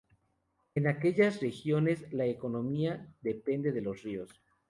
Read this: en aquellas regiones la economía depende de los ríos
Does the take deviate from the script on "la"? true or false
false